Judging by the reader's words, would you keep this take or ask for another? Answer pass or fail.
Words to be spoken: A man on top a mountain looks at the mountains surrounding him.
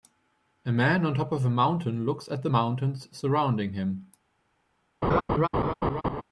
fail